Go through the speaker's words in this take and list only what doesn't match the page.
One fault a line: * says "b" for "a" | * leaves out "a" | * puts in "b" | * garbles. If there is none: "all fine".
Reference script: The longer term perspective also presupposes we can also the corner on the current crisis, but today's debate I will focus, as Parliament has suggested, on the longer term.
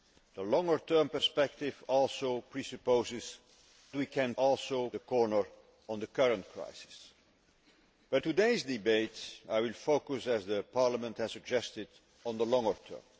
all fine